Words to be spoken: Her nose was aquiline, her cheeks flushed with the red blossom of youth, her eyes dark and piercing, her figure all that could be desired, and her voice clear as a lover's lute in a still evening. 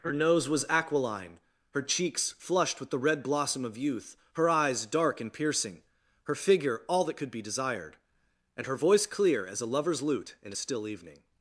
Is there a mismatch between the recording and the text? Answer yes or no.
no